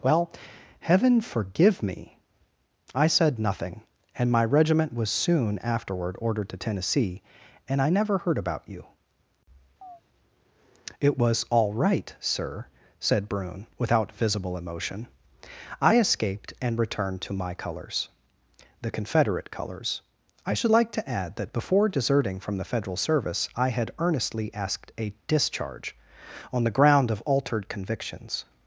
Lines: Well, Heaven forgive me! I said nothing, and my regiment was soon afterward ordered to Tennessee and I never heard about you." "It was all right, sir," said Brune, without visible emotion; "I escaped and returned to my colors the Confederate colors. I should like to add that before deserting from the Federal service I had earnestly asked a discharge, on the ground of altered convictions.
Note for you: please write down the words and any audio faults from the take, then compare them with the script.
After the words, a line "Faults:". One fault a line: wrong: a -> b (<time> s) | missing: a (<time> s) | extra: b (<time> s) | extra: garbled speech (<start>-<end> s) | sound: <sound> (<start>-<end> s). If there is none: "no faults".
Well, Heaven forgive me! I said nothing, and my regiment was soon afterward ordered to Tennessee and I never heard about you." "It was all right, sir," said Brune, without visible emotion; "I escaped and returned to my colors the Confederate colors. I should like to add that before deserting from the Federal service I had earnestly asked a discharge, on the ground of altered convictions.
Faults:
sound: chirp (9.8-10.0 s)